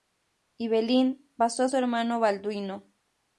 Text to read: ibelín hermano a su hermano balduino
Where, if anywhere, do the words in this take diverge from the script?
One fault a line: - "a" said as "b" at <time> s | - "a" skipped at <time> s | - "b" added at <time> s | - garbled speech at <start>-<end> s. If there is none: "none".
- "hermano" said as "pasó" at 1.4 s